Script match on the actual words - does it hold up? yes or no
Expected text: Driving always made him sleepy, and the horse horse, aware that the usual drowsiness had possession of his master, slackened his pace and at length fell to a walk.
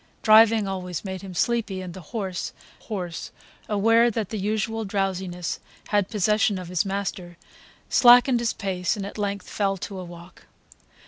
yes